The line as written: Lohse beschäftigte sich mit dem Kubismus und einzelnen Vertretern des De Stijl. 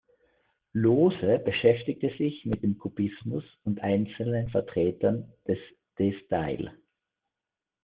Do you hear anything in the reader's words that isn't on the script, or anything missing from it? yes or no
no